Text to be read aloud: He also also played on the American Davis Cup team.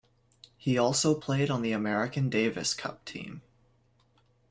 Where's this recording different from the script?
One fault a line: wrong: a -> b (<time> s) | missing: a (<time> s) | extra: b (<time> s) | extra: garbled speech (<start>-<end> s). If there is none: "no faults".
missing: also (1.2 s)